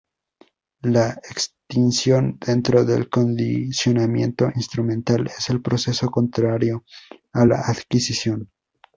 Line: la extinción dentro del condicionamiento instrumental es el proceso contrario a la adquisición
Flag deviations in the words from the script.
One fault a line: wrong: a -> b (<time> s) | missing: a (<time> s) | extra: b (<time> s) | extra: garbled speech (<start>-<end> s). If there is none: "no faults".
no faults